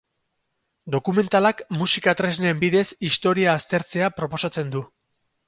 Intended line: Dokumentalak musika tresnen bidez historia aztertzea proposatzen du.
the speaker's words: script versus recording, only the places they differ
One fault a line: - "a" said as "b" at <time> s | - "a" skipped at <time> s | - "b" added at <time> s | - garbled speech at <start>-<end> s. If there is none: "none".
none